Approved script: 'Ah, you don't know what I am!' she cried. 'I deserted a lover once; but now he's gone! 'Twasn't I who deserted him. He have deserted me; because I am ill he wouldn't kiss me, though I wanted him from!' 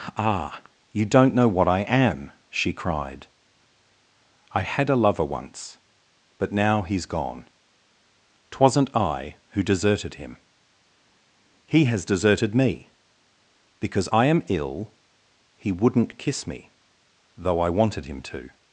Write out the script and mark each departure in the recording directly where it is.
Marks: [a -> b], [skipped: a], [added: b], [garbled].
'Ah, you don't know what I am!' she cried. 'I [deserted -> had] a lover once; but now he's gone! 'Twasn't I who deserted him. He [have -> has] deserted me; because I am ill he wouldn't kiss me, though I wanted him [from!' -> to]